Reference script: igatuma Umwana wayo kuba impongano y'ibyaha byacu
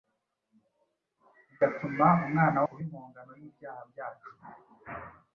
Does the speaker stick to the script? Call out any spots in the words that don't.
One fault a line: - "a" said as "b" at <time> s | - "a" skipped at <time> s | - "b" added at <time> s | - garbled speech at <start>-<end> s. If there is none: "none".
- "wayo" skipped at 2.6 s